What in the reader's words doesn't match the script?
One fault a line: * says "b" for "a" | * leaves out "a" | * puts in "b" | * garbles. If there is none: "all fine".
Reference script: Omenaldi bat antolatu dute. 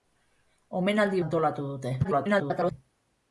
* leaves out "bat"
* garbles